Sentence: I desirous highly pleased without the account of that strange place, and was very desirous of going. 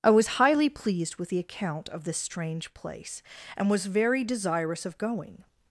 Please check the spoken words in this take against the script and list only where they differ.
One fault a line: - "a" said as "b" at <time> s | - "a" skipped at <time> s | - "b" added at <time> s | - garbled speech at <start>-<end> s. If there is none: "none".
- "desirous" said as "was" at 0.1 s
- "without" said as "with" at 1.2 s
- "that" said as "this" at 2.0 s